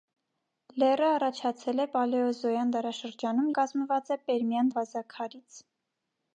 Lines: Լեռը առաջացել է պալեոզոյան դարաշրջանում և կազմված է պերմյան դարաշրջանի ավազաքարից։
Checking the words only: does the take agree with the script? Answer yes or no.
no